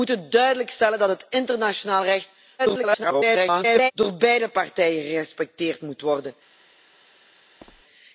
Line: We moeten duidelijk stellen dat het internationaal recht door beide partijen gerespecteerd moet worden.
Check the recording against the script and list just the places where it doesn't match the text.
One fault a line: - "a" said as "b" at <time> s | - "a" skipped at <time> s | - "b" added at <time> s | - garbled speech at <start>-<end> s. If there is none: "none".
- garbled speech at 2.6-3.9 s